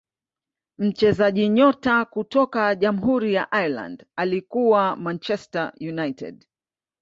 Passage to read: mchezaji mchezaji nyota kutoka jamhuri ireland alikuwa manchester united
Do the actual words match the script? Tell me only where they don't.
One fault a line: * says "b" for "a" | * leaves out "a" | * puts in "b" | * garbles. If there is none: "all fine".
* leaves out "mchezaji"
* puts in "ya"